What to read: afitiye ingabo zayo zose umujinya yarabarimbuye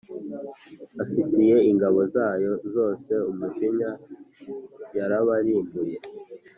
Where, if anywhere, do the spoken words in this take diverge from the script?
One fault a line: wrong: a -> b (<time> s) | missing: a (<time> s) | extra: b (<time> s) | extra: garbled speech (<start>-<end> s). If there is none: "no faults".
no faults